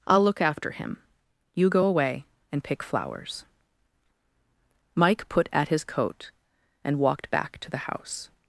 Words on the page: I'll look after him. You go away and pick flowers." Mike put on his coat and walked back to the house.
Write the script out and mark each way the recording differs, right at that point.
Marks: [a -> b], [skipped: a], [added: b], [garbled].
I'll look after him. You go away and pick flowers." Mike put [on -> at] his coat and walked back to the house.